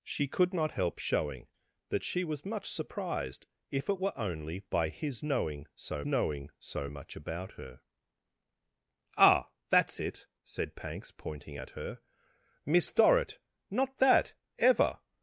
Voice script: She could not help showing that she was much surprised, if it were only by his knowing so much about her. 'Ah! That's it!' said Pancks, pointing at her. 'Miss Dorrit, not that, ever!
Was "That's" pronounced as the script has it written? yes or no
yes